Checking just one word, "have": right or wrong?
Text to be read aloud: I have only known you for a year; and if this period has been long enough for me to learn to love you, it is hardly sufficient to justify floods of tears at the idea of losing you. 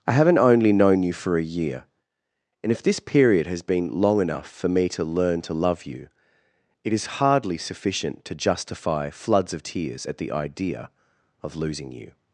wrong